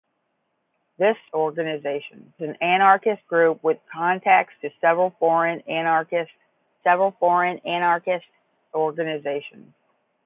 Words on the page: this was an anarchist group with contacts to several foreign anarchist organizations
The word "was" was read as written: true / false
false